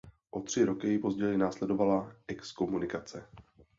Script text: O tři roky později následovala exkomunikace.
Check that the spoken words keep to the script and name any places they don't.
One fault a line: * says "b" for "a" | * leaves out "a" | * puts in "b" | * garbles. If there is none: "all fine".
all fine